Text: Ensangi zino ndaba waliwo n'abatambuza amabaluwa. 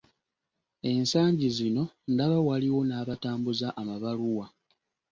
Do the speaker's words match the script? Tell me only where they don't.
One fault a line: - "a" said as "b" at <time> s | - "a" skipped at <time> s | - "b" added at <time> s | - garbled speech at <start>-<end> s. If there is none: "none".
none